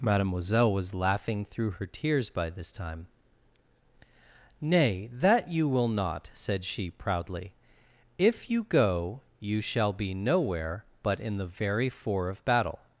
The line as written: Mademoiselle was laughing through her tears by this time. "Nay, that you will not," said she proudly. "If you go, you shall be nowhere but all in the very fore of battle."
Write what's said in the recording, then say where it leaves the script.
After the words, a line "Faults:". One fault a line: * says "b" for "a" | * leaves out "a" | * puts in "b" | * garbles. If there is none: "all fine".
Mademoiselle was laughing through her tears by this time. "Nay, that you will not," said she proudly. "If you go, you shall be nowhere but in the very fore of battle."
Faults:
* leaves out "all"